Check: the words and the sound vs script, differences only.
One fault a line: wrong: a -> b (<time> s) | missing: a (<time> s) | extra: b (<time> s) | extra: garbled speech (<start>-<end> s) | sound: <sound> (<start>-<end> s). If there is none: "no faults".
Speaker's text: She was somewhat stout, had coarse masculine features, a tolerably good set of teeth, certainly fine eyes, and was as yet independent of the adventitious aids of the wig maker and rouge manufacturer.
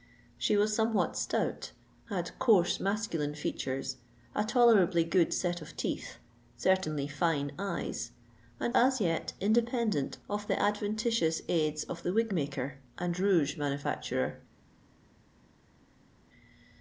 missing: was (8.7 s)